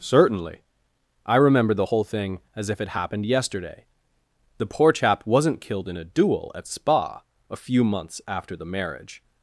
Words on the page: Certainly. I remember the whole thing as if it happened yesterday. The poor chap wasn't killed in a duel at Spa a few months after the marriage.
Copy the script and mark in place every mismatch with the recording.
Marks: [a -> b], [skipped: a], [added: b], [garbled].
Certainly. I remember the whole thing as if it happened yesterday. The poor chap wasn't killed in a duel at Spa a few months after the marriage.